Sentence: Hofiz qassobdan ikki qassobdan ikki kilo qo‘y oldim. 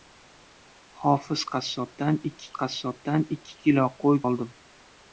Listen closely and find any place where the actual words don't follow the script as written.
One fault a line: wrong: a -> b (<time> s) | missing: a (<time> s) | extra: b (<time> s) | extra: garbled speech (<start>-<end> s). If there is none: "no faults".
no faults